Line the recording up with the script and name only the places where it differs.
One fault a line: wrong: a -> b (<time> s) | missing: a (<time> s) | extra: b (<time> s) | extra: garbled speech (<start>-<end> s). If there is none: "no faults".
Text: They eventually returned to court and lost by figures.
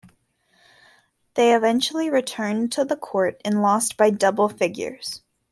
extra: the (2.8 s)
extra: double (4.1 s)